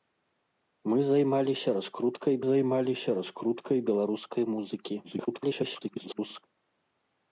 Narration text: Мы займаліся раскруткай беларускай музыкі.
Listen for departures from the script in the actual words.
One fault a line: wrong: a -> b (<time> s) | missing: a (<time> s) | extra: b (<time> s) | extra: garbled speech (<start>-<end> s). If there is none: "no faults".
extra: займаліся раскруткай (2.5 s)
extra: garbled speech (5.0-6.4 s)